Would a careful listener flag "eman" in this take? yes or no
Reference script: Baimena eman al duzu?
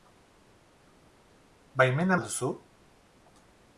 yes